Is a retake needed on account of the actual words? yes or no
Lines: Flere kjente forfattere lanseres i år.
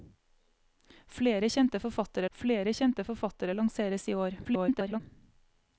yes